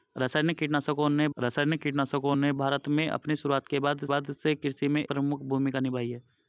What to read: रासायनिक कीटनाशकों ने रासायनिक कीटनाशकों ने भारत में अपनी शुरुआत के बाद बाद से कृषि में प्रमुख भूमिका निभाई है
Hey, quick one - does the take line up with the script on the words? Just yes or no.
yes